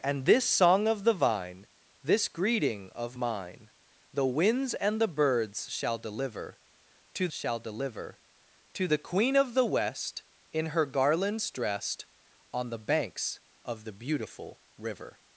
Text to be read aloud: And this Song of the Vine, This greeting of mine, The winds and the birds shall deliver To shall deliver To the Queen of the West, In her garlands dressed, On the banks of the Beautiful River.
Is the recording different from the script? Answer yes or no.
no